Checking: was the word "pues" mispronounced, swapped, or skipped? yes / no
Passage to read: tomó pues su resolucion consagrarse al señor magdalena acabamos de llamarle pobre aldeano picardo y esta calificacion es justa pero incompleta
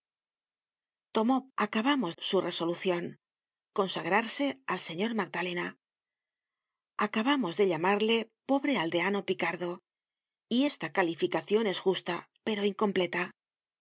yes